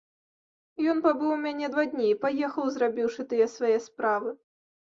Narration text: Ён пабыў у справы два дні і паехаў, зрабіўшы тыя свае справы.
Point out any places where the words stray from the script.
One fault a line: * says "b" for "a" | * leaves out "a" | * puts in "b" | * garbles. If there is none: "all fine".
* says "мяне" for "справы"